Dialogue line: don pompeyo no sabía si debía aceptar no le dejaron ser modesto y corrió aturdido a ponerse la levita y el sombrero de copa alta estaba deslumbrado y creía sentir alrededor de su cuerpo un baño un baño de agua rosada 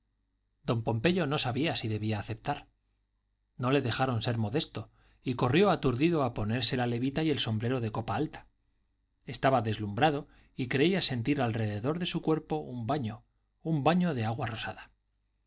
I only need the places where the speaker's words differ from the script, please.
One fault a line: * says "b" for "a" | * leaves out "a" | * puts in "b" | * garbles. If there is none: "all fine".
all fine